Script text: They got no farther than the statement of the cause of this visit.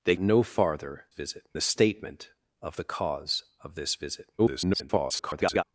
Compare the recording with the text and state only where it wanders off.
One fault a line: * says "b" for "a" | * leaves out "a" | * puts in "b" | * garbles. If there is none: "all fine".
* leaves out "got"
* says "visit" for "than"
* garbles